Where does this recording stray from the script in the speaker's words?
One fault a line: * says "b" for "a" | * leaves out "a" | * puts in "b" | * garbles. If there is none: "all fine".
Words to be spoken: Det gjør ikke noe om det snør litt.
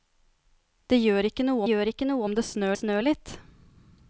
* puts in "gjør ikke noe"
* puts in "snør"